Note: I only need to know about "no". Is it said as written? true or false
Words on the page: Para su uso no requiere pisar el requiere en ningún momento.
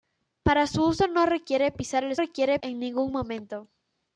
true